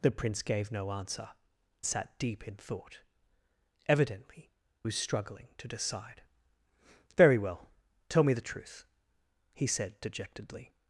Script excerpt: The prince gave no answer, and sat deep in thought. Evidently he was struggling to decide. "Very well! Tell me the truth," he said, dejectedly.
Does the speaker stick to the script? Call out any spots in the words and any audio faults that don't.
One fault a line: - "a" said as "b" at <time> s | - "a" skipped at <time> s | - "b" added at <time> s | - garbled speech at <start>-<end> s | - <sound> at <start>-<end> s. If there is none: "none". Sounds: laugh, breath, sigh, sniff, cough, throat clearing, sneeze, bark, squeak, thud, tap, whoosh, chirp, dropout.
- "and" skipped at 1.3 s
- "he" skipped at 4.5 s